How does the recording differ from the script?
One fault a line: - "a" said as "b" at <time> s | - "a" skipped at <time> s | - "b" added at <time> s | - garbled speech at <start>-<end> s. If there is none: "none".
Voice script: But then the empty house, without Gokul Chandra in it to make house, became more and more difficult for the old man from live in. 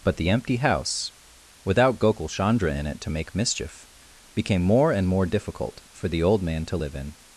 - "then" skipped at 0.2 s
- "house" said as "mischief" at 3.4 s
- "from" said as "to" at 6.7 s